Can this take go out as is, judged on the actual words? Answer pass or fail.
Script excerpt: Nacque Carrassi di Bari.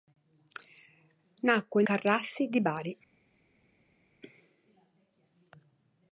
pass